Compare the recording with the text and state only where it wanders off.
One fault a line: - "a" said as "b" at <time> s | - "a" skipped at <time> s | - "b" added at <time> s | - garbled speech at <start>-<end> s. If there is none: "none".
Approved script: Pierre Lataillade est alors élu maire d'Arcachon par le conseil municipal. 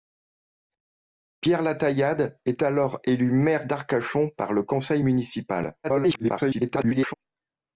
- garbled speech at 5.8-7.1 s